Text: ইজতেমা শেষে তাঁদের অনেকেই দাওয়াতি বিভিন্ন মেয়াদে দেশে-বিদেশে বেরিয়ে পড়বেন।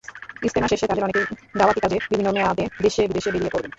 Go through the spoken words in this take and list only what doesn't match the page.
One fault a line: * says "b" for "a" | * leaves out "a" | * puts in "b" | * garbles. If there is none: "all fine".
* puts in "কাজে"